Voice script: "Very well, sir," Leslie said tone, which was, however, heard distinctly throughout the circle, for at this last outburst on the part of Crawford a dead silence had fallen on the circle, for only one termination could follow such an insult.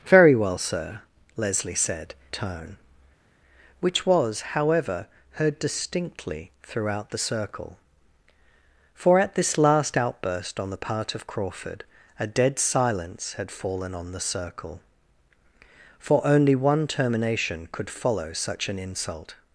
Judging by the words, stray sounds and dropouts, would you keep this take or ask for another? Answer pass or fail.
pass